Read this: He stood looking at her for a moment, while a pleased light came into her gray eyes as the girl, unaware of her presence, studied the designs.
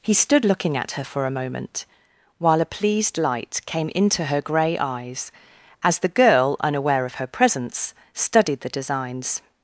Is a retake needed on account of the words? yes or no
no